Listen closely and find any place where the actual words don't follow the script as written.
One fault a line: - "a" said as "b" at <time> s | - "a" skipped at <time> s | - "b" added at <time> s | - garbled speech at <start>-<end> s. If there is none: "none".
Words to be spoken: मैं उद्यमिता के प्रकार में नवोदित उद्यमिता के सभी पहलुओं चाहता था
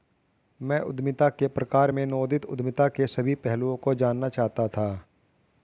- "को जानना" added at 3.8 s